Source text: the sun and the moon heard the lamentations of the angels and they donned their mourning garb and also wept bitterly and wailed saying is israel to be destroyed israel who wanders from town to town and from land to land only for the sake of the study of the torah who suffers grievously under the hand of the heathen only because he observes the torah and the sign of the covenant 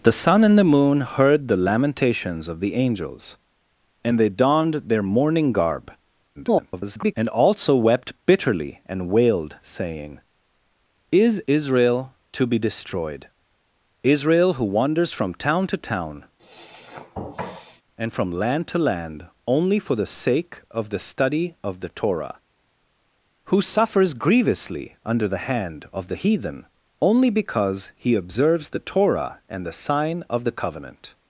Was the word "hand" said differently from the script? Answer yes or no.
no